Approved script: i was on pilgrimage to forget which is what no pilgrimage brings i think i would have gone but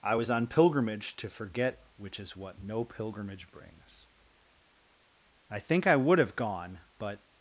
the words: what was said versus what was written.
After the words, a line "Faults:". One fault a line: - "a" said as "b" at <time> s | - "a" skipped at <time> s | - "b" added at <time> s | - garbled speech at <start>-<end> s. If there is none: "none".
i was on pilgrimage to forget which is what no pilgrimage brings i think i would have gone but
Faults:
none